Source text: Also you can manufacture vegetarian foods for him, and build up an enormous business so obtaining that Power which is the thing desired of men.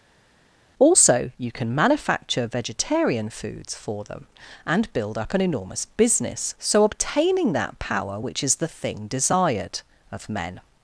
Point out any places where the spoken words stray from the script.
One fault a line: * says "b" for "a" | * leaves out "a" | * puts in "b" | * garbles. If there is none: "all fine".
* says "them" for "him"